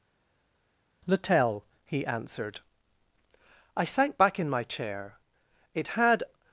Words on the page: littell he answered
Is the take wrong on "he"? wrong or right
right